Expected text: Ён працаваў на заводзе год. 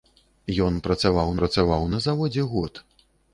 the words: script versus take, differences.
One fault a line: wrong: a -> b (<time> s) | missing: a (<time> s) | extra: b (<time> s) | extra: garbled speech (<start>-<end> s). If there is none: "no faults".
extra: працаваў (1.4 s)